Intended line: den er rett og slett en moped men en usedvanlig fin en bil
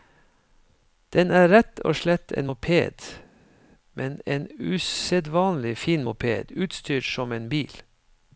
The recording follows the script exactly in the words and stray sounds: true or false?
false